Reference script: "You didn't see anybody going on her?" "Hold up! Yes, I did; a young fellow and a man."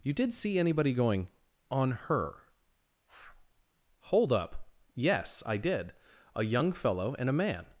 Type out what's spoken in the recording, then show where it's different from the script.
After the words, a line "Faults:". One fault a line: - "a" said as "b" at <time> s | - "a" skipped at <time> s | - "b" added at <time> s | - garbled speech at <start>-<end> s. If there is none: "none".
"You did see anybody going on her?" "Hold up! Yes, I did; a young fellow and a man."
Faults:
- "didn't" said as "did" at 0.1 s